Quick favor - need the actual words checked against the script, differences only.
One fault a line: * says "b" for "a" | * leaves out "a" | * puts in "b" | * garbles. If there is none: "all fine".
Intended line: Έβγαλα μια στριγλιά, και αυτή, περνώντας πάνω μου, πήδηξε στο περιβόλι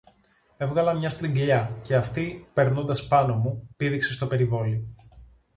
all fine